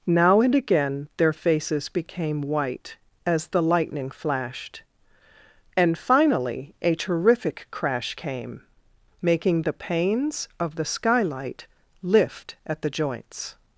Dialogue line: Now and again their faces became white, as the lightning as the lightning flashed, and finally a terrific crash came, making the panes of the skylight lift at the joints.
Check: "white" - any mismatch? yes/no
no